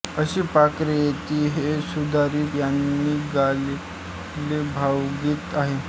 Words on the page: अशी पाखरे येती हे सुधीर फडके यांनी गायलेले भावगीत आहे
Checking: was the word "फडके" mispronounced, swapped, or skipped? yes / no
yes